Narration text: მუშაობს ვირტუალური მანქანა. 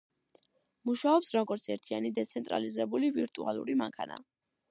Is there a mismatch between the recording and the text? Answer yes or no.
yes